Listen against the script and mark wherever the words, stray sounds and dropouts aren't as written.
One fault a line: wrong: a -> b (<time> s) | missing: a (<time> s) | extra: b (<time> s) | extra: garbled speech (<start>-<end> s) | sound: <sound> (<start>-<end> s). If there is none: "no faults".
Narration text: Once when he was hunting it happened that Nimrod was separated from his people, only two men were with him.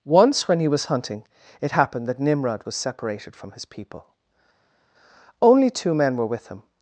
no faults